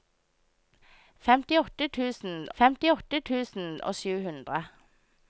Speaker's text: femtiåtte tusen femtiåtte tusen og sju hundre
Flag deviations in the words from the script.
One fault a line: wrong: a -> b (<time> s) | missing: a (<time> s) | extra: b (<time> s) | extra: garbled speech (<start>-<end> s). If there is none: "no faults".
no faults